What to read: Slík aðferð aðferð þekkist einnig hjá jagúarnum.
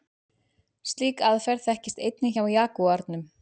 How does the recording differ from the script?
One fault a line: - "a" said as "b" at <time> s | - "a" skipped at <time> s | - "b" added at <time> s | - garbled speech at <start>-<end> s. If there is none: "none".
- "aðferð" skipped at 1.7 s